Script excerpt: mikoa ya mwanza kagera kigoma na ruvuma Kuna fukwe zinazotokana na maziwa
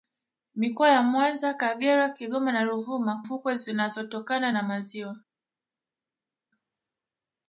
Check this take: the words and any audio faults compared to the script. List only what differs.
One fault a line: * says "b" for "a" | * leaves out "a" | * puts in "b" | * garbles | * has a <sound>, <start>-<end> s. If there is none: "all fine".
* leaves out "Kuna"